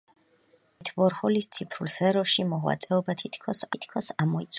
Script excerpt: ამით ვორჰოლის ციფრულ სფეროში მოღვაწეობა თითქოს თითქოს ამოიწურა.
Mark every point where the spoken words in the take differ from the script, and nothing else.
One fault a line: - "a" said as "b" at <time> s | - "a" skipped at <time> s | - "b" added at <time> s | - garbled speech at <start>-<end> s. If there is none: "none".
none